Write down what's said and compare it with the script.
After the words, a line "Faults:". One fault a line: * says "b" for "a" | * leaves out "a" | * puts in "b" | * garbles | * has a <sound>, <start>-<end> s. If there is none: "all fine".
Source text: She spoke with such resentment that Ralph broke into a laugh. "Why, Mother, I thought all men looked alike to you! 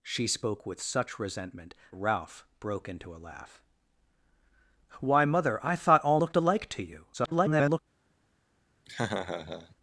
She spoke with such resentment Ralph broke into a laugh. "Why, Mother, I thought all looked alike to you! [garbled]
Faults:
* leaves out "that"
* leaves out "men"
* garbles
* has a laugh, 8.9-9.8 s